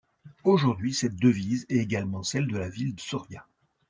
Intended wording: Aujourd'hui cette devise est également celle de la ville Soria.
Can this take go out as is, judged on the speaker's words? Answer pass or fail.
pass